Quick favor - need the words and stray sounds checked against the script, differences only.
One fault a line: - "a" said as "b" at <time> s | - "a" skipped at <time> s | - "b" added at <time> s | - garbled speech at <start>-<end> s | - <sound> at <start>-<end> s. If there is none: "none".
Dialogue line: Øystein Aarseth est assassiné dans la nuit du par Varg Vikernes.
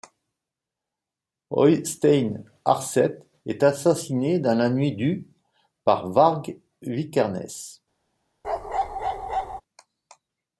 - bark at 8.4-9.6 s